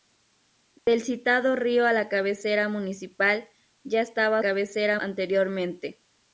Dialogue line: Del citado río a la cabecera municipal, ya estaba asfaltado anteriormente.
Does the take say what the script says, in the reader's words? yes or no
no